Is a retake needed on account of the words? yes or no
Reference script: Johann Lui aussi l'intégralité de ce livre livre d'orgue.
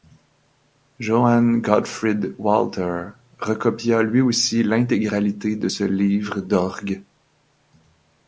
yes